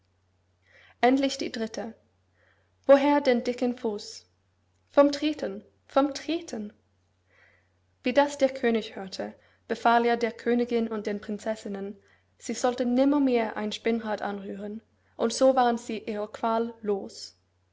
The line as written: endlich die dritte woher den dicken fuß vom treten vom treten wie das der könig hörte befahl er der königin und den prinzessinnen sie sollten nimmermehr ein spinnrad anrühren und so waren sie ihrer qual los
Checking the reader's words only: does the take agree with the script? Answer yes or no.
yes